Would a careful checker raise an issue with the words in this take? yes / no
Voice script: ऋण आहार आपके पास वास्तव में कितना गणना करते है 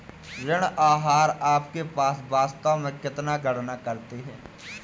no